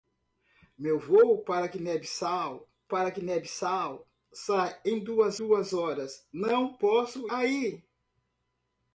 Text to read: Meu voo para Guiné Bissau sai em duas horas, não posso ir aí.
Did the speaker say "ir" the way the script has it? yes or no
no